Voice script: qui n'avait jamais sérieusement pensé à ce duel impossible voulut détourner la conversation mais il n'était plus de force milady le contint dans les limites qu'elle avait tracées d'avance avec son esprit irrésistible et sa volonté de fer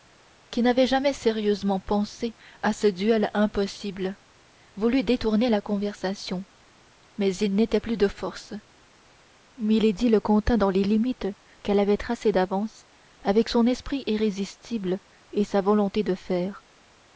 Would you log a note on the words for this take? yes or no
no